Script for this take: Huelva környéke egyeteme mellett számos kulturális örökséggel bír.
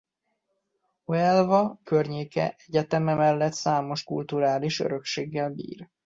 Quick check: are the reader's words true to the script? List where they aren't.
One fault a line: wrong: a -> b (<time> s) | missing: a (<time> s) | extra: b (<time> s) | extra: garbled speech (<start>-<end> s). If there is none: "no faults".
no faults